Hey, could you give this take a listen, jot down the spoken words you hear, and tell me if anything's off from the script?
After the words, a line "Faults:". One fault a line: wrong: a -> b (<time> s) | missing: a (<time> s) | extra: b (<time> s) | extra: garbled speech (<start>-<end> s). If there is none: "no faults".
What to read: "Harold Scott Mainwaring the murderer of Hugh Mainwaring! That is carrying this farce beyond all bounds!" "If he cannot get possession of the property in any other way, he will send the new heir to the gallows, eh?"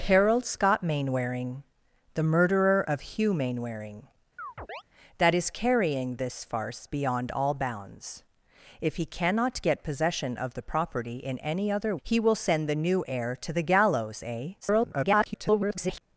"Harold Scott Mainwaring the murderer of Hugh Mainwaring! That is carrying this farce beyond all bounds!" "If he cannot get possession of the property in any other he will send the new heir to the gallows, eh?" [garbled]
Faults:
missing: way (12.0 s)
extra: garbled speech (14.6-16.0 s)